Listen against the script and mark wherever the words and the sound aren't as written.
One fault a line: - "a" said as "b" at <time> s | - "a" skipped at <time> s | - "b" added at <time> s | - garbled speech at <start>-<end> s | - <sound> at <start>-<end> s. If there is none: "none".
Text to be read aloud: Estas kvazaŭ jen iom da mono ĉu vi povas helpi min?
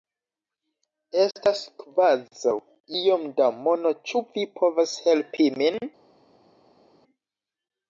- "jen" skipped at 2.5 s